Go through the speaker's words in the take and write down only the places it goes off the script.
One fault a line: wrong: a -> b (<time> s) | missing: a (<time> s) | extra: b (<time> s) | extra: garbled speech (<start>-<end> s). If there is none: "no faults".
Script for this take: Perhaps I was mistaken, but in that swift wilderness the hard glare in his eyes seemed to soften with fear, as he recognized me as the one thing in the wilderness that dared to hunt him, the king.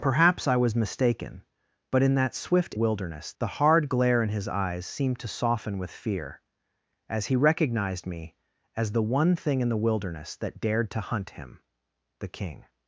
no faults